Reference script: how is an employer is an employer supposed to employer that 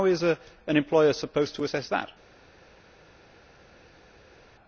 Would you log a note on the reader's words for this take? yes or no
yes